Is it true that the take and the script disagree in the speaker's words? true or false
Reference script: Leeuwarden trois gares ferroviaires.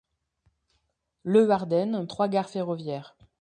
false